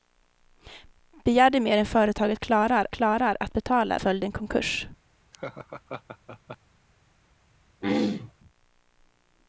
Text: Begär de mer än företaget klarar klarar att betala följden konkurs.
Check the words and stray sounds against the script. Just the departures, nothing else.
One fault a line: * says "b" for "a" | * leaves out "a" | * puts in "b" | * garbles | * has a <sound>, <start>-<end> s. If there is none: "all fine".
* has a laugh, 5.3-6.6 s
* has a throat clearing, 7.8-8.3 s